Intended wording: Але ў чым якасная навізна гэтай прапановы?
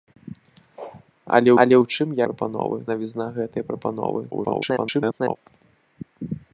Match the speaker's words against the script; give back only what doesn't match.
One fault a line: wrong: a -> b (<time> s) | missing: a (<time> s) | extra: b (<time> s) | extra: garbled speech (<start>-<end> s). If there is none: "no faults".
extra: але (1.6 s)
wrong: якасная -> прапановы (2.3 s)
extra: garbled speech (4.3-5.4 s)